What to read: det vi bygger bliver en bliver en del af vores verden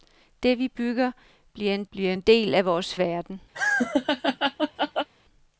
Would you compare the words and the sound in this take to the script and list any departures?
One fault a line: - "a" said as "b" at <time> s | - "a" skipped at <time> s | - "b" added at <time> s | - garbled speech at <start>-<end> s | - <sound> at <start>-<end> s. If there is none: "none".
- laugh at 3.5-5.1 s